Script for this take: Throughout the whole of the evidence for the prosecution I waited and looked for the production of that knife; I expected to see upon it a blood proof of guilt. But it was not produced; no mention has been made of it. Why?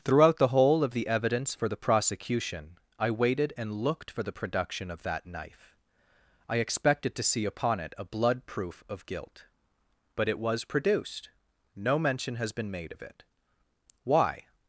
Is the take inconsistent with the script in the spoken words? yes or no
yes